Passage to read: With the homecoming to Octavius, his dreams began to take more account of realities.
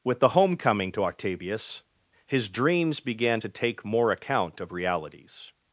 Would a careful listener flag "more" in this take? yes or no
no